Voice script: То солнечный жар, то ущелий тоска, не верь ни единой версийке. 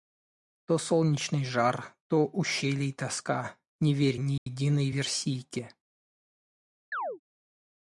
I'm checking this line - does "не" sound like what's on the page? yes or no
yes